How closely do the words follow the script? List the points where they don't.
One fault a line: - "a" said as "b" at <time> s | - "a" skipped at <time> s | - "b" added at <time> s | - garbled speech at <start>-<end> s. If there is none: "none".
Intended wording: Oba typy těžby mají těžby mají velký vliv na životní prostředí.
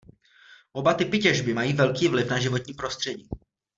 - "těžby mají" skipped at 1.7 s